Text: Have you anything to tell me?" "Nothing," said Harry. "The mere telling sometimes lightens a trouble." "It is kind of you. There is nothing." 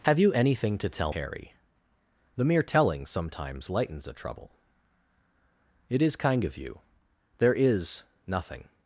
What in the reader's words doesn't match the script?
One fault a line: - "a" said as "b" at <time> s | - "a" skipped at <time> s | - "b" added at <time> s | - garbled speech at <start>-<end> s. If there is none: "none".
- "me Nothing said" skipped at 1.1 s